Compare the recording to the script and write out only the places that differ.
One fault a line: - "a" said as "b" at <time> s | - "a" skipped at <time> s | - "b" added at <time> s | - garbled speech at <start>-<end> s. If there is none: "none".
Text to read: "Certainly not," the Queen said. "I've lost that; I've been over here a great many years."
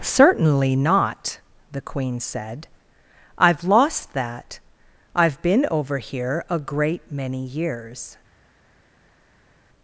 none